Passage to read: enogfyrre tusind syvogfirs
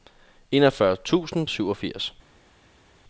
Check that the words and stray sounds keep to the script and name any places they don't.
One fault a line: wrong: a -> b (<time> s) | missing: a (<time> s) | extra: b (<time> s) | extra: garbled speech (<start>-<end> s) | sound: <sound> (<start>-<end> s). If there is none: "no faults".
no faults